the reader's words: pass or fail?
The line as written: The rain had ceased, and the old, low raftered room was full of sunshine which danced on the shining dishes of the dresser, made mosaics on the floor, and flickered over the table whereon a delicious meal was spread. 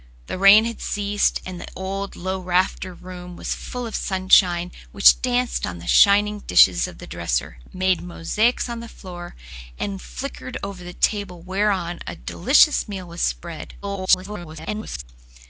fail